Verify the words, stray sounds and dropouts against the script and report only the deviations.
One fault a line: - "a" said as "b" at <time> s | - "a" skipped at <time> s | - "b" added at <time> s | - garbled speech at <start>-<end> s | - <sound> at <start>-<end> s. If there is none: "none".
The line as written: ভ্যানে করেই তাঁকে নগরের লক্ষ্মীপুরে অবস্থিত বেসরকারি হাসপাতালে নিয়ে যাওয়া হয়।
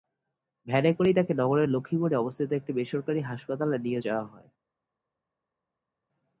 - "একটি" added at 2.5 s